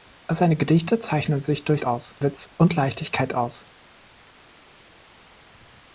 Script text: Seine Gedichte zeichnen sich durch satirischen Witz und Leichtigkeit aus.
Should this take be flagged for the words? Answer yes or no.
yes